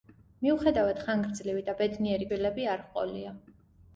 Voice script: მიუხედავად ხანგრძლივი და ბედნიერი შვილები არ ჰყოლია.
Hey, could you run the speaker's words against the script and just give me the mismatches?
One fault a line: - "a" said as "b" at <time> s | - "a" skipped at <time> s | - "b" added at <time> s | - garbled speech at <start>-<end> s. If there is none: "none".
none